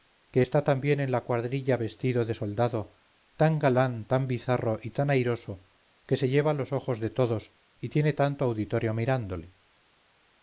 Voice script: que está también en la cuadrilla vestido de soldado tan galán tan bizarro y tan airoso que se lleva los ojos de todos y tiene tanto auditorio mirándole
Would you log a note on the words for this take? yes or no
no